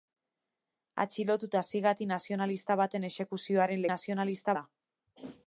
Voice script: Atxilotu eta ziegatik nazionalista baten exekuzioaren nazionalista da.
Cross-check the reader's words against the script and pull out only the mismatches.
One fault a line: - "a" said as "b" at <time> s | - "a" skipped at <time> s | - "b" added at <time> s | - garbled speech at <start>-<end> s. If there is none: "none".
none